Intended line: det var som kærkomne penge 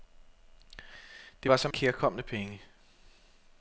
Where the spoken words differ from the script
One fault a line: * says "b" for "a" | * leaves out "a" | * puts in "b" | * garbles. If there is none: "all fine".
all fine